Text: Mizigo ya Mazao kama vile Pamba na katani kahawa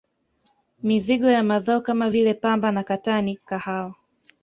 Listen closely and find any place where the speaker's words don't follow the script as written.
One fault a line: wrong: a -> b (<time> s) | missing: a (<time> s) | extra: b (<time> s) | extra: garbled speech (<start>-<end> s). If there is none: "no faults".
no faults